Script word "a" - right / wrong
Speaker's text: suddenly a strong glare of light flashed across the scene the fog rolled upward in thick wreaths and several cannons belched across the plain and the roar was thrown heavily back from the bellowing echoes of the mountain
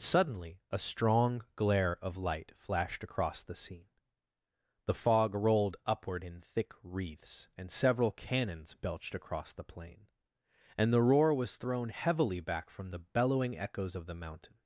right